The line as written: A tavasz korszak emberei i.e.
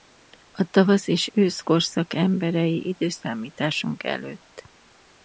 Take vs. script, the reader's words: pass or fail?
fail